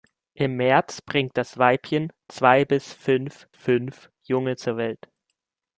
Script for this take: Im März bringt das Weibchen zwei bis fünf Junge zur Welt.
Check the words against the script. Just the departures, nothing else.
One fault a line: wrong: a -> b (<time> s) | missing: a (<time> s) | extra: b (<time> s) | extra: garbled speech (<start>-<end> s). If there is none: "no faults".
extra: fünf (3.5 s)